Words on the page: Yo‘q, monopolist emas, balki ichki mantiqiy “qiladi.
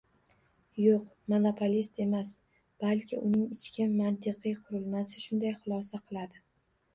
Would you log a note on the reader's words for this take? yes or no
yes